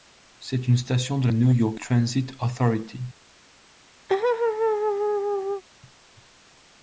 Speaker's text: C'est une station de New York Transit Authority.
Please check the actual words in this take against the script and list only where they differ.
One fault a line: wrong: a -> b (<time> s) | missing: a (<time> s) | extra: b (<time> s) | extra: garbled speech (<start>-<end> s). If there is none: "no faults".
no faults